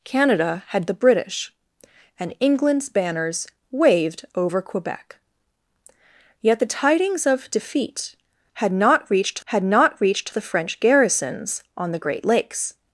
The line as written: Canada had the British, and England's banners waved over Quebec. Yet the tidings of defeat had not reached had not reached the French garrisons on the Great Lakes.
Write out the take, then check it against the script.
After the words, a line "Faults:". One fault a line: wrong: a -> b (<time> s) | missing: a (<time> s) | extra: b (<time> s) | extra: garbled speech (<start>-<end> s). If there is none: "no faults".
Canada had the British, and England's banners waved over Quebec. Yet the tidings of defeat had not reached had not reached the French garrisons on the Great Lakes.
Faults:
no faults